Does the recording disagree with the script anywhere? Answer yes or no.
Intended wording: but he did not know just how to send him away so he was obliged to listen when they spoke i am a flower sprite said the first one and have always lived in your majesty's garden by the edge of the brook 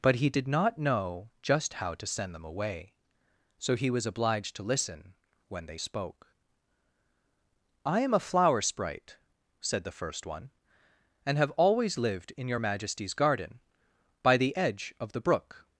yes